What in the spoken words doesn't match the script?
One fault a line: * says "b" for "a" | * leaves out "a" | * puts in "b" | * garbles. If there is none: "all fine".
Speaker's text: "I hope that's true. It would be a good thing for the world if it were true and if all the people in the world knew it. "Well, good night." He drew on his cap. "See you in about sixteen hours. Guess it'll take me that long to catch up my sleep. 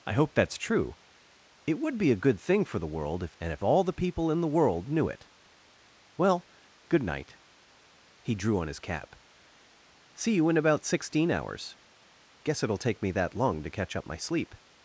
* leaves out "it were true"